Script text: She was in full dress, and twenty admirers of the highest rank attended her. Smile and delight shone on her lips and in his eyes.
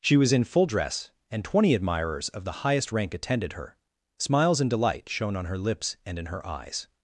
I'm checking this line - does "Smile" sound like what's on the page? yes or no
no